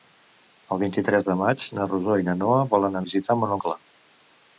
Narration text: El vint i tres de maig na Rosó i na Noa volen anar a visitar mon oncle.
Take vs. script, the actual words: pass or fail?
fail